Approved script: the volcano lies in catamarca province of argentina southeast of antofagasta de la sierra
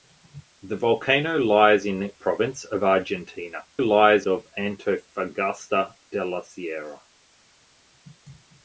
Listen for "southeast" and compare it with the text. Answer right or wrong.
wrong